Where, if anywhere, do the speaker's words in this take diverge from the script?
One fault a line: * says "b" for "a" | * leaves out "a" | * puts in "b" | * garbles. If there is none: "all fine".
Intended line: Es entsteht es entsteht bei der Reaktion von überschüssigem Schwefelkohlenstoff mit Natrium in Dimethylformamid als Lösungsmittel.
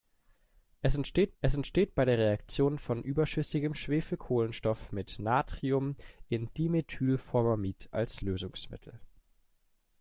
all fine